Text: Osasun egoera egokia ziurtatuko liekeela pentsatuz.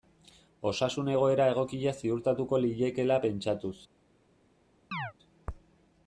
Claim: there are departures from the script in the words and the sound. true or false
true